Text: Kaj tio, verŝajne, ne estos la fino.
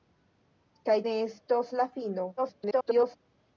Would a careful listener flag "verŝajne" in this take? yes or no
yes